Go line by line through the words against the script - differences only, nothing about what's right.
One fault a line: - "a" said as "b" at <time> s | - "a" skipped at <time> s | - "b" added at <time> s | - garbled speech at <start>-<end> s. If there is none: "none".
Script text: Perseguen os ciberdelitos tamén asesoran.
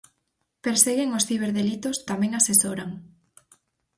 none